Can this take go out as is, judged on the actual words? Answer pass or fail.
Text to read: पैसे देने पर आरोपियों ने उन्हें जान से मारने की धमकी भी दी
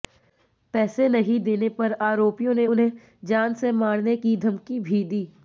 fail